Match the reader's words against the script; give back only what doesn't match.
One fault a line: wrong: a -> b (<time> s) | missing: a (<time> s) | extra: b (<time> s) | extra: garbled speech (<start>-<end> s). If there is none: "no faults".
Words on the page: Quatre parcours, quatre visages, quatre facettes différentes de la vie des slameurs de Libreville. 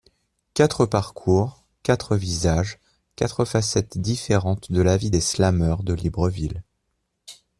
no faults